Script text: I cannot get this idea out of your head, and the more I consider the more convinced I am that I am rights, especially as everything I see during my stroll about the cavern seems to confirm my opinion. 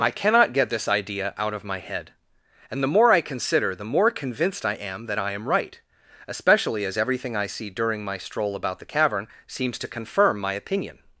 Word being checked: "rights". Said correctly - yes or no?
no